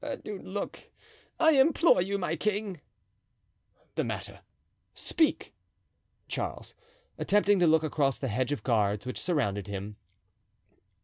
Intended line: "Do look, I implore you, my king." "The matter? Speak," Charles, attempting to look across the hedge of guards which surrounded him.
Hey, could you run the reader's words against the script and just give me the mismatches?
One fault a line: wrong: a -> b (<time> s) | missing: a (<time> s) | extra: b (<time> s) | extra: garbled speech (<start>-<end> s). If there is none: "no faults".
no faults